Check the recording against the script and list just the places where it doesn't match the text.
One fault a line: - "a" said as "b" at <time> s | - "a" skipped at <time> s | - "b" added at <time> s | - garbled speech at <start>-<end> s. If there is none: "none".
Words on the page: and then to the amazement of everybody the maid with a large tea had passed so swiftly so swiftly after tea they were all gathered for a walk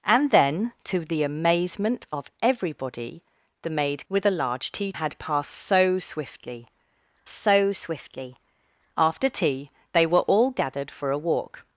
none